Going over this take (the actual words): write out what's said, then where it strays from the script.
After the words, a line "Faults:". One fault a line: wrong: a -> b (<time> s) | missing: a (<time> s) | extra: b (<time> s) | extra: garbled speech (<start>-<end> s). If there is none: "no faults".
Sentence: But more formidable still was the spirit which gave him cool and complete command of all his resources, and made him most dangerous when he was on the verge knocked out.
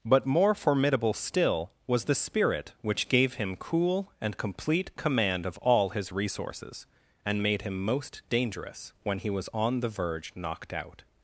But more formidable still was the spirit which gave him cool and complete command of all his resources, and made him most dangerous when he was on the verge knocked out.
Faults:
no faults